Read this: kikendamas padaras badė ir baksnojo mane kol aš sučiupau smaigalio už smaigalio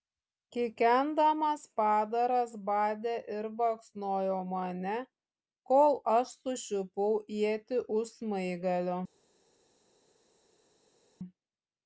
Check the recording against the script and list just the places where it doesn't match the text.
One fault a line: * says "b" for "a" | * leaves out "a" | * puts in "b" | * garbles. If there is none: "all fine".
* says "ietį" for "smaigalio"